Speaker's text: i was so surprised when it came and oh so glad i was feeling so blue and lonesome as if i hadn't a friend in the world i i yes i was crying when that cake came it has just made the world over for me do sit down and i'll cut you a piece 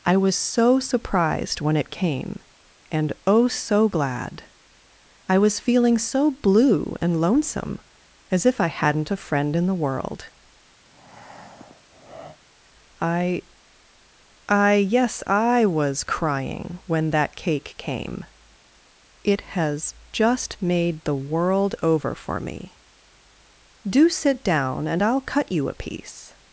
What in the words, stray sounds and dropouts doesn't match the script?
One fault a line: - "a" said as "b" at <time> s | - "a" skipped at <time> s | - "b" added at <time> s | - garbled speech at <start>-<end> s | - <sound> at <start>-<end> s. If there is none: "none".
- breath at 10.8-12.4 s